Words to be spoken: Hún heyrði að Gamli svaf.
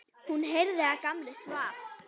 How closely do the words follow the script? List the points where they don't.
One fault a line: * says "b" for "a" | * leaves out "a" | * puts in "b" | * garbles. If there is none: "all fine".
all fine